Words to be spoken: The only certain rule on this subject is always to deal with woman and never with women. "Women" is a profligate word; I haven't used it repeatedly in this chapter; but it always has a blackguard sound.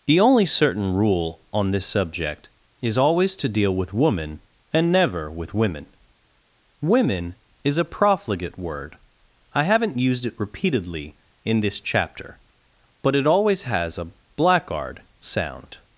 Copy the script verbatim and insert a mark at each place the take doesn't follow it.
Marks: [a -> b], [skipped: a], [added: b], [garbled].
The only certain rule on this subject is always to deal with woman and never with women. "Women" is a profligate word; I haven't used it repeatedly in this chapter; but it always has a blackguard sound.